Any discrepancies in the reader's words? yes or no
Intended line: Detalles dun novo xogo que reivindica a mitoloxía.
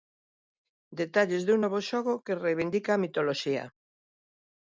no